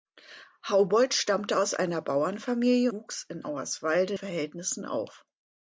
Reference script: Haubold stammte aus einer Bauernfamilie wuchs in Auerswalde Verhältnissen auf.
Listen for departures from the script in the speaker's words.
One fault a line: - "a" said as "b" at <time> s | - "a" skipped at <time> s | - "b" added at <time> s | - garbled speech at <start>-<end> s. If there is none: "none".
none